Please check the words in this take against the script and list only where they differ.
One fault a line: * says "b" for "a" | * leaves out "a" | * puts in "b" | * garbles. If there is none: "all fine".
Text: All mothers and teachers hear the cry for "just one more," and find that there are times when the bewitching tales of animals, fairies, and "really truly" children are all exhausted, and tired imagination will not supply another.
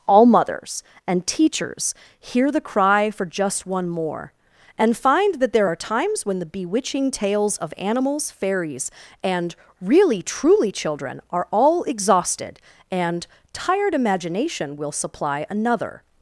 * leaves out "not"